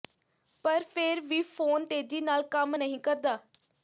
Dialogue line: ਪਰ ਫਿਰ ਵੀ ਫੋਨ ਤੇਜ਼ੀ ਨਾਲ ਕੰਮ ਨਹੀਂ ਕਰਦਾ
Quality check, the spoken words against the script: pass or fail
pass